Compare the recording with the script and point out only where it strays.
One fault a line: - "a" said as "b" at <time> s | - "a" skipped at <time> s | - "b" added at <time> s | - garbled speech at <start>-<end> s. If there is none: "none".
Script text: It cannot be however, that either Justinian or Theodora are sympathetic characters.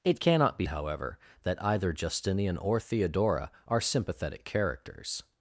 none